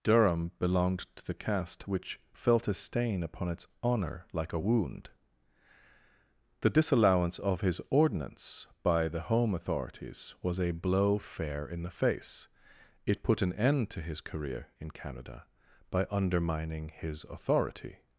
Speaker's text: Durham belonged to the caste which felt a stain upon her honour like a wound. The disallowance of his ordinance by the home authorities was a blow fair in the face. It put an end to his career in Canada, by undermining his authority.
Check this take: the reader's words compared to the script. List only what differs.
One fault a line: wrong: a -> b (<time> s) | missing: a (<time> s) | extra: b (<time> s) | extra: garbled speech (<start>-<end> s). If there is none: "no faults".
wrong: her -> its (3.5 s)